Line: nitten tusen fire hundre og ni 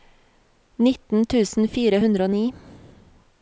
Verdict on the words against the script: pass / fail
pass